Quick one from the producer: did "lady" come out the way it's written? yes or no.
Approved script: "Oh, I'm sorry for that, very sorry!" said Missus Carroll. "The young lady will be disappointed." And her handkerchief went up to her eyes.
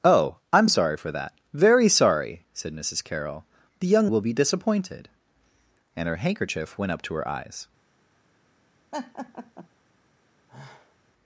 no